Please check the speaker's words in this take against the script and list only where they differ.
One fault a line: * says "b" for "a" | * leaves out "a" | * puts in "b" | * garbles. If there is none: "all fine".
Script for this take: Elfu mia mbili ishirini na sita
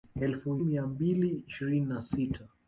all fine